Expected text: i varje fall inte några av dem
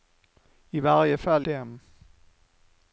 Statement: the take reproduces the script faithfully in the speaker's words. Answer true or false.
false